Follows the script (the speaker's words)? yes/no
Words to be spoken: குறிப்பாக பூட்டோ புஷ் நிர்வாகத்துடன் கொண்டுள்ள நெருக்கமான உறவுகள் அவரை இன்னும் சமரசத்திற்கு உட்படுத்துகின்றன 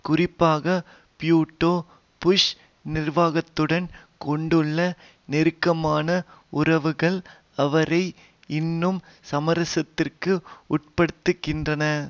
yes